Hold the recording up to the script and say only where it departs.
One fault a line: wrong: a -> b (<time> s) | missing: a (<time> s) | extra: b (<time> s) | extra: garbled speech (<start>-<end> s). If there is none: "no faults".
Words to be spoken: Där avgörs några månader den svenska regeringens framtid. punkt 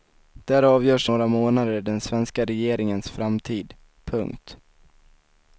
no faults